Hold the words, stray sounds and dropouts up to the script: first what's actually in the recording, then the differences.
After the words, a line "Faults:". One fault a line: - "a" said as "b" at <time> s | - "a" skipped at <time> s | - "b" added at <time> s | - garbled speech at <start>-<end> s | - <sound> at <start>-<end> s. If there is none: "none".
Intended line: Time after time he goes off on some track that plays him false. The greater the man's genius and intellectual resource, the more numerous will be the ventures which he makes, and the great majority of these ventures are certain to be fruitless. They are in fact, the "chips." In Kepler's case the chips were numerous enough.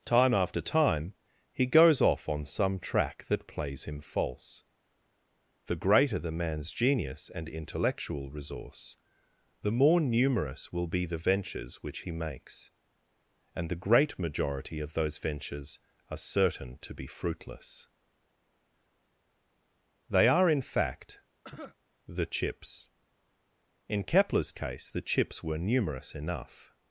Time after time he goes off on some track that plays him false. The greater the man's genius and intellectual resource, the more numerous will be the ventures which he makes, and the great majority of those ventures are certain to be fruitless. They are in fact, the "chips." In Kepler's case the chips were numerous enough.
Faults:
- "these" said as "those" at 14.9 s
- cough at 21.4-21.8 s